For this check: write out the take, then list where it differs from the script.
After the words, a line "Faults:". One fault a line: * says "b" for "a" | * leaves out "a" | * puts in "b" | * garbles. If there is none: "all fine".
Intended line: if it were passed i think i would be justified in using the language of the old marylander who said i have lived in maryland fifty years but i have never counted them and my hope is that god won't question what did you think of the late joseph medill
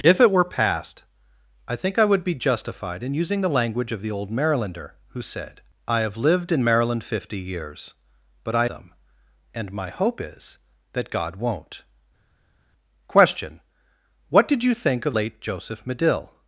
if it were passed i think i would be justified in using the language of the old marylander who said i have lived in maryland fifty years but i them and my hope is that god won't question what did you think of late joseph medill
Faults:
* leaves out "have never counted"
* leaves out "the"